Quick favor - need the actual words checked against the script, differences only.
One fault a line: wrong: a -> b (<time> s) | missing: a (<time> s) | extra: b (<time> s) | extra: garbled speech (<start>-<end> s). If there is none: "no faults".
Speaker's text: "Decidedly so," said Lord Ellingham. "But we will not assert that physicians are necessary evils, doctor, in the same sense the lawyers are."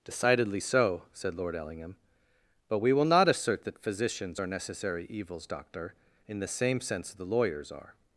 no faults